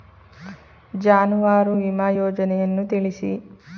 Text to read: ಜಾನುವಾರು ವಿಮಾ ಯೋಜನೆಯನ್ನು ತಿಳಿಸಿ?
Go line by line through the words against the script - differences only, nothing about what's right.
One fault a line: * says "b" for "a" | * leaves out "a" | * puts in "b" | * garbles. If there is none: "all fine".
all fine